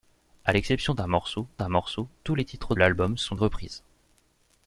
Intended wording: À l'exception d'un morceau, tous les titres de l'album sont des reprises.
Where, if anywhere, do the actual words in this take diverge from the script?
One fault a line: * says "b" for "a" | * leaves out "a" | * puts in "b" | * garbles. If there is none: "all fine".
* puts in "d'un morceau"
* leaves out "de"
* leaves out "des"